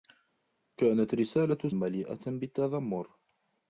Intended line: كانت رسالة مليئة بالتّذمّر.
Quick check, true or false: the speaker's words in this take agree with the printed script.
true